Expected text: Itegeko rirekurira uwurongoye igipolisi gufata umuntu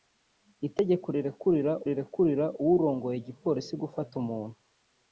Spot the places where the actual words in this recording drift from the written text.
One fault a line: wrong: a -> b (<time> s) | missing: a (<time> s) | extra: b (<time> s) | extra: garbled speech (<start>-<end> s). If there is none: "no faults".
extra: rirekurira (1.9 s)